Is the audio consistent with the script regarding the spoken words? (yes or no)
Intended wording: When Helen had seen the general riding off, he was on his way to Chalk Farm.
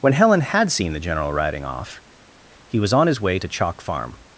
yes